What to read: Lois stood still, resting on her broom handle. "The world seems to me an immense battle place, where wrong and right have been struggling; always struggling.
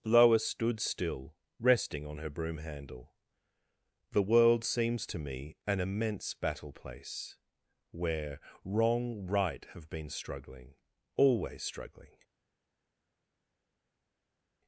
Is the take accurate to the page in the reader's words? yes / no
no